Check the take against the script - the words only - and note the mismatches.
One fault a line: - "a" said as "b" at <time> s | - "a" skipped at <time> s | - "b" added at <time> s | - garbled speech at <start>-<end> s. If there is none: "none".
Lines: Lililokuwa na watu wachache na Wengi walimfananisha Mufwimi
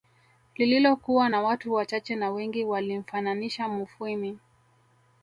none